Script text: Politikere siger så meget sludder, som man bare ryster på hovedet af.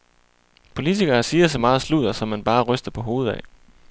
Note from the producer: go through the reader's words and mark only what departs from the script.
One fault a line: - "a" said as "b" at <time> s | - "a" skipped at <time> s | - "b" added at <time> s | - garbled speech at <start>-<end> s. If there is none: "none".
none